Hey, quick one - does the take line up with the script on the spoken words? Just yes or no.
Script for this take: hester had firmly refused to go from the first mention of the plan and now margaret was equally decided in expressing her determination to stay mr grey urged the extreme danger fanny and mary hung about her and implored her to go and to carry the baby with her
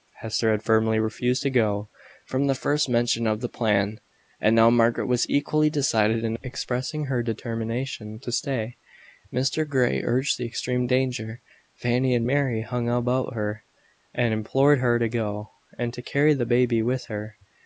yes